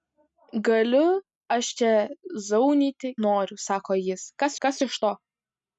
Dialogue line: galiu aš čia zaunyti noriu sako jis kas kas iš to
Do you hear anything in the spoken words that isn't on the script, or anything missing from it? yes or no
no